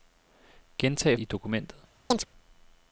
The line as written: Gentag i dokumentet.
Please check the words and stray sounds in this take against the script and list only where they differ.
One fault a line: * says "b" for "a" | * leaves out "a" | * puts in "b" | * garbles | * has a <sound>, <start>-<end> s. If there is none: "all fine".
* has a chirp, 2.1-2.3 s